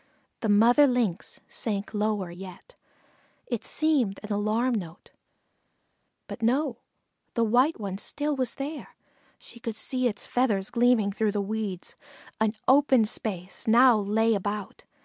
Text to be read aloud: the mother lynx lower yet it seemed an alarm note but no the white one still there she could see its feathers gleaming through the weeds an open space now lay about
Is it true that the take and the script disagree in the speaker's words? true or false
true